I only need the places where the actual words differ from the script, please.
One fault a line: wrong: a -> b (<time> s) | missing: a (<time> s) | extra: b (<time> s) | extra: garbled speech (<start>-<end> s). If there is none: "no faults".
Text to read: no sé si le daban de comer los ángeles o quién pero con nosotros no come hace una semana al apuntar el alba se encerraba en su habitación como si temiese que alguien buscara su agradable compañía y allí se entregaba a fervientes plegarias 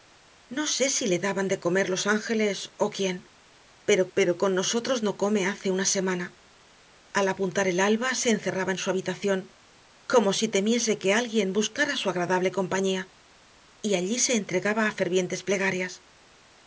extra: pero (4.2 s)